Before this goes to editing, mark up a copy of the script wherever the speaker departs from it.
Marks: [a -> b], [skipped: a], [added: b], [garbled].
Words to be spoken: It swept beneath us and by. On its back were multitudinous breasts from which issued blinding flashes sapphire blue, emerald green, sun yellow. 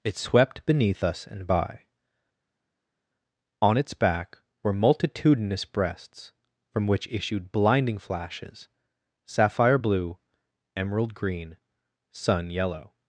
It swept beneath us and by. On its back were multitudinous breasts from which issued blinding flashes sapphire blue, emerald green, sun yellow.